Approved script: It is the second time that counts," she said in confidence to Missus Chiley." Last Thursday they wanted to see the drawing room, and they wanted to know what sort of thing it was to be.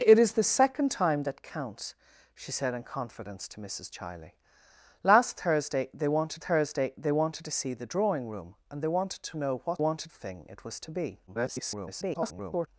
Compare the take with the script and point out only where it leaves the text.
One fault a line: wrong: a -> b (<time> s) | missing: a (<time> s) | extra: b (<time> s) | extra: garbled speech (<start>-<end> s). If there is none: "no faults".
extra: Thursday they wanted (6.4 s)
wrong: sort -> wanted (9.8 s)
extra: garbled speech (11.3-12.7 s)